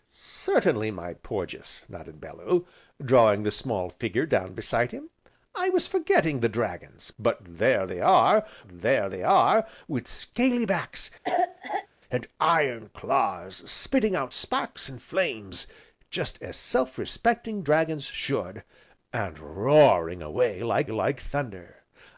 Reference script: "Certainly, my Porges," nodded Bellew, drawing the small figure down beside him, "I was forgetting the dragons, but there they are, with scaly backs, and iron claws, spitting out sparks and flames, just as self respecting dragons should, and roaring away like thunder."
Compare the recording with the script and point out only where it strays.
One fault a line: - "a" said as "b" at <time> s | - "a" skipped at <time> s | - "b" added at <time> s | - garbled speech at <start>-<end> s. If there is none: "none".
- "there they are" added at 8.7 s
- "like" added at 20.9 s